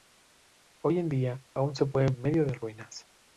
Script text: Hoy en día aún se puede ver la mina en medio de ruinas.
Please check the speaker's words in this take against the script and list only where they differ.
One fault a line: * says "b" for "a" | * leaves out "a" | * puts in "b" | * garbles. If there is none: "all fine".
* leaves out "ver la mina"